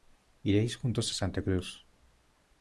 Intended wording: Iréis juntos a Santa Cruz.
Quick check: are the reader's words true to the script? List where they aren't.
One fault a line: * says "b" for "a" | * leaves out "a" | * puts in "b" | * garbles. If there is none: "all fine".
all fine